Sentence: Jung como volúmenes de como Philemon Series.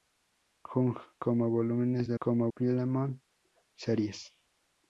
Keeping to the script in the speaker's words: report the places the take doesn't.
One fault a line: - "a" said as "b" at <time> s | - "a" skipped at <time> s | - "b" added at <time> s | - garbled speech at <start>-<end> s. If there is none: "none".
none